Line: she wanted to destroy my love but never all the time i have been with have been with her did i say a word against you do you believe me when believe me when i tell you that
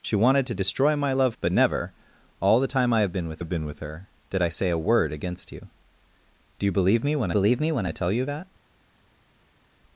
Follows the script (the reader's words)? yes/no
yes